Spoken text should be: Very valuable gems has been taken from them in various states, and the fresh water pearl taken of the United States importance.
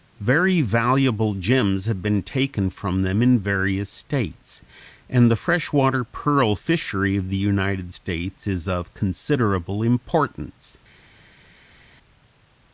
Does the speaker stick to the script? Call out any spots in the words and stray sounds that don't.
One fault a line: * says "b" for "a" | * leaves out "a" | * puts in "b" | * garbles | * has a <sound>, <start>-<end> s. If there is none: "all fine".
* says "have" for "has"
* says "fishery" for "taken"
* puts in "is of considerable"